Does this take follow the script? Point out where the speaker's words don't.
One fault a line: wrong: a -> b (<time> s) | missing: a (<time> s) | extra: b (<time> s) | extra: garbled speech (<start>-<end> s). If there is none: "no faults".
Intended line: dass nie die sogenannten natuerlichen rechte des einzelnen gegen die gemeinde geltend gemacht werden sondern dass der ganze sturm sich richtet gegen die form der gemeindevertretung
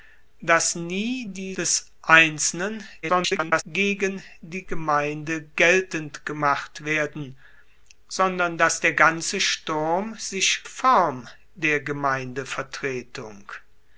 missing: sogenannten natuerlichen rechte (1.6 s)
extra: garbled speech (3.0-3.6 s)
missing: richtet gegen die (10.6 s)